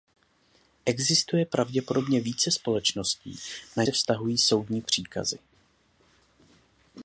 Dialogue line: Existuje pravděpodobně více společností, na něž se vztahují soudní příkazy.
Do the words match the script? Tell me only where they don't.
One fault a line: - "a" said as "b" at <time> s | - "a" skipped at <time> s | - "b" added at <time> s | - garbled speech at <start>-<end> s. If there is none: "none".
- "něž" skipped at 3.8 s